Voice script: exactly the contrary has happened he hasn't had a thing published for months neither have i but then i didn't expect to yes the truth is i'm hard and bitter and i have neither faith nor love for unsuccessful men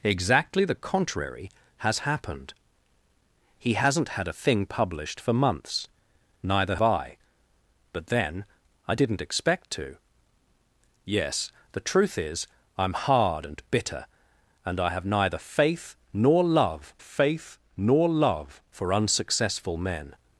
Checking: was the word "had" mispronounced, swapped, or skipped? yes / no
no